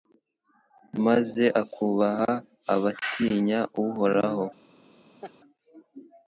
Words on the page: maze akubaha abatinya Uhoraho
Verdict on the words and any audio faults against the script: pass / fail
fail